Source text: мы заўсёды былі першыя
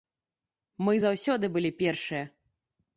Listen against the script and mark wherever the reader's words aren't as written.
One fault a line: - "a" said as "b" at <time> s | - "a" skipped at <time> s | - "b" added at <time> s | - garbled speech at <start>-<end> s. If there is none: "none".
none